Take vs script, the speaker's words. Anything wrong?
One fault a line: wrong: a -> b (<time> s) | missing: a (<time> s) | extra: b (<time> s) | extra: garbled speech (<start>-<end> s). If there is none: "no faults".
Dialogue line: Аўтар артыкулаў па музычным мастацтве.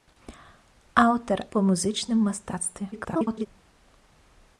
missing: артыкулаў (1.4 s)
extra: garbled speech (2.9-3.5 s)